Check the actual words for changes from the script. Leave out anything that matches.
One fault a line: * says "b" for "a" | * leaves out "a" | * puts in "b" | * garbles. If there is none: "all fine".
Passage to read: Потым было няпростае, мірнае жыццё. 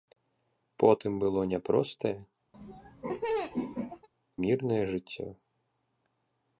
all fine